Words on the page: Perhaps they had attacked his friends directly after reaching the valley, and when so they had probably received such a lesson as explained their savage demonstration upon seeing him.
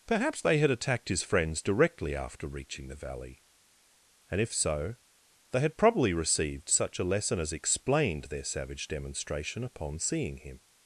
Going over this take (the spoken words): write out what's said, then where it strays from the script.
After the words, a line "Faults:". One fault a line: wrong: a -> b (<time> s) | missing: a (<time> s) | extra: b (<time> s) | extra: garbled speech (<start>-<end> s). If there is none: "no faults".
Perhaps they had attacked his friends directly after reaching the valley, and if so they had probably received such a lesson as explained their savage demonstration upon seeing him.
Faults:
wrong: when -> if (4.4 s)